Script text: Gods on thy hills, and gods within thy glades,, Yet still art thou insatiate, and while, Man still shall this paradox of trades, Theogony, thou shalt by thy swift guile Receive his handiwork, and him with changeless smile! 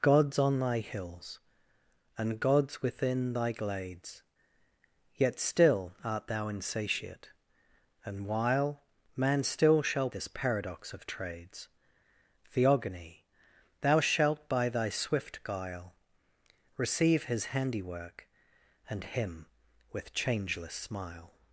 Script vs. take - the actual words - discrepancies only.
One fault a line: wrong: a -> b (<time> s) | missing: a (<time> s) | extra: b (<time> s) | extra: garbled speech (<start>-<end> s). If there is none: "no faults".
no faults